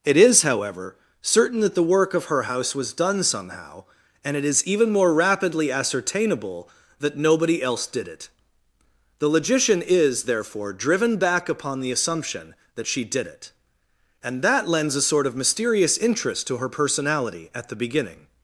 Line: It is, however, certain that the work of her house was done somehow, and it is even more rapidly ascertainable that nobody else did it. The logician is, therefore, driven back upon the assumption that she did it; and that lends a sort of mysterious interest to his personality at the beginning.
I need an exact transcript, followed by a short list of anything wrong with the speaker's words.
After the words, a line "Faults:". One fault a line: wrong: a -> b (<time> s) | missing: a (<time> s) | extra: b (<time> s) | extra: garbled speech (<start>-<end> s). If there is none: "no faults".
It is, however, certain that the work of her house was done somehow, and it is even more rapidly ascertainable that nobody else did it. The logician is, therefore, driven back upon the assumption that she did it; and that lends a sort of mysterious interest to her personality at the beginning.
Faults:
wrong: his -> her (16.6 s)